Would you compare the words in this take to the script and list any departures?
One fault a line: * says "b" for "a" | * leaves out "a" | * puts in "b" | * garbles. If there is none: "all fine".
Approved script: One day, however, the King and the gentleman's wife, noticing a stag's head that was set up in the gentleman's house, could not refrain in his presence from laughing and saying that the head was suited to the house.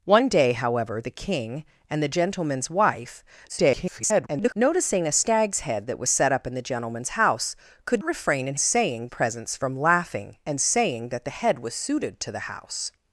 * garbles
* leaves out "not"
* says "saying" for "his"